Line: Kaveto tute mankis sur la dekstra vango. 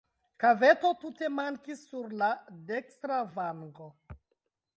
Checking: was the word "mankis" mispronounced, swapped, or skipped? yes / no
no